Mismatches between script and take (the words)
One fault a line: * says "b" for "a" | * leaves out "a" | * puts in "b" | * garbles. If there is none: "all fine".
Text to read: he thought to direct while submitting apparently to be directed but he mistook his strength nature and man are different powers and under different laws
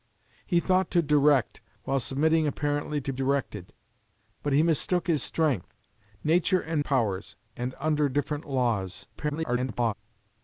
* leaves out "be"
* leaves out "man are different"
* garbles